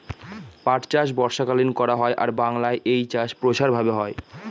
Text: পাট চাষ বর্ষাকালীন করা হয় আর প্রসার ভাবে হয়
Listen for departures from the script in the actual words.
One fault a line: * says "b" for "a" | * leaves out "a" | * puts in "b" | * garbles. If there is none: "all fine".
* puts in "বাংলায় এই চাষ"